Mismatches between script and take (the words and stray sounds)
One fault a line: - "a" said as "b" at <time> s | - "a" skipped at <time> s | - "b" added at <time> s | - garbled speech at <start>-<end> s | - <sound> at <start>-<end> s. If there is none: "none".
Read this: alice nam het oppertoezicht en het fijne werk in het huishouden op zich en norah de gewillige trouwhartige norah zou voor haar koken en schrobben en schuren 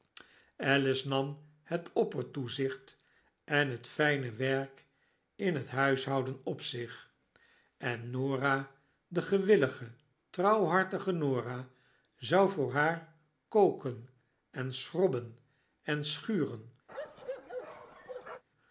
- bark at 16.9-18.4 s